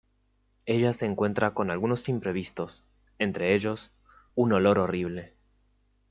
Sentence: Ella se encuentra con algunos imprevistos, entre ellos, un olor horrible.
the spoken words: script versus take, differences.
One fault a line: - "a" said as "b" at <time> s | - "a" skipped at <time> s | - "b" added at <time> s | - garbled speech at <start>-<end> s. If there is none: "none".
none